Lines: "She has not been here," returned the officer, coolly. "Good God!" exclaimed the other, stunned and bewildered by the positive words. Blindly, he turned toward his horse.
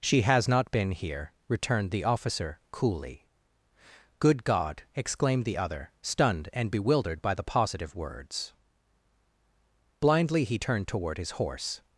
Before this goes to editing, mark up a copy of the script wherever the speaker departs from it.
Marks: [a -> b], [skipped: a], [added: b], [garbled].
"She has not been here," returned the officer, coolly. "Good God!" exclaimed the other, stunned and bewildered by the positive words. Blindly, he turned toward his horse.